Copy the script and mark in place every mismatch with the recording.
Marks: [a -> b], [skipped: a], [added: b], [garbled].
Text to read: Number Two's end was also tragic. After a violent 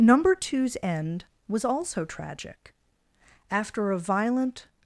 Number Two's end was also tragic. After a violent